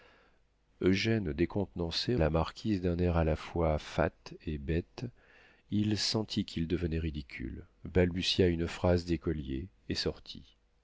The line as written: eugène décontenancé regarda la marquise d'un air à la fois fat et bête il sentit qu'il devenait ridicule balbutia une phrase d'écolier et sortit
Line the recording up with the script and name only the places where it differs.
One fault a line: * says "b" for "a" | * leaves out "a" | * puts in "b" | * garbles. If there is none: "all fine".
* leaves out "regarda"